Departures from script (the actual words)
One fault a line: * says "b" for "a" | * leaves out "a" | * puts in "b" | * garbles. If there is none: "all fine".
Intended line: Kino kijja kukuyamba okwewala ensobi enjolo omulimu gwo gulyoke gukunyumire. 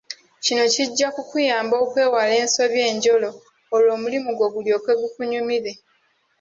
* puts in "olwo"